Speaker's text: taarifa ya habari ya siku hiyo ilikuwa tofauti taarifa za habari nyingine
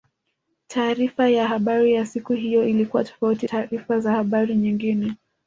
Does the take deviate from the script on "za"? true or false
false